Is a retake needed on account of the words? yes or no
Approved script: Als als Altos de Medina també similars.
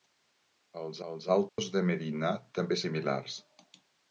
no